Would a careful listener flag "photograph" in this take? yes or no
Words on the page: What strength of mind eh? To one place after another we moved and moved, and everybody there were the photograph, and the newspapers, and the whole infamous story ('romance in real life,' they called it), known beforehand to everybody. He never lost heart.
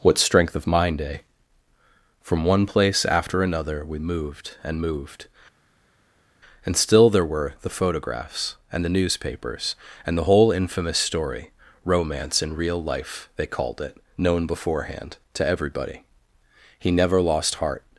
yes